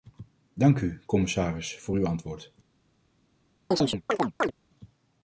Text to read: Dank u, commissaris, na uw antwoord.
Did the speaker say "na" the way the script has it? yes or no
no